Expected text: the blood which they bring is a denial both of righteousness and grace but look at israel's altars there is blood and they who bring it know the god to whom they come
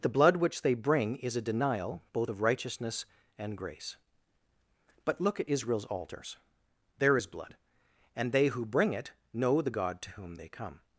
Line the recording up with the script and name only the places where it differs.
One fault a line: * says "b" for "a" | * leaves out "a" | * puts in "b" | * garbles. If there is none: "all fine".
all fine